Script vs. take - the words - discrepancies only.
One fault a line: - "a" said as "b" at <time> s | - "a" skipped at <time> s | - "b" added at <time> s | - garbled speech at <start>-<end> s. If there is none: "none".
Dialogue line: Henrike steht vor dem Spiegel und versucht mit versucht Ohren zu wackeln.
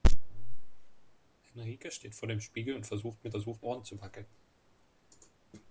none